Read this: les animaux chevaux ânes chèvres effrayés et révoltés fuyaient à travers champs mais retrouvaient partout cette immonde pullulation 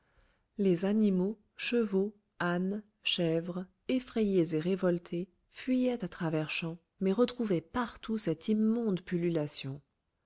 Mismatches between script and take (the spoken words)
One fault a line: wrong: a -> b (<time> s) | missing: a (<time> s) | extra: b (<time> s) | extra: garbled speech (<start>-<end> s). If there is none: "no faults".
no faults